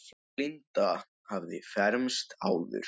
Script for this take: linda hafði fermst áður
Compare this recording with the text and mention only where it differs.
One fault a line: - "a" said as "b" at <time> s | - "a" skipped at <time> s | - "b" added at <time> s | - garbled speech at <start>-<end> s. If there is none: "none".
none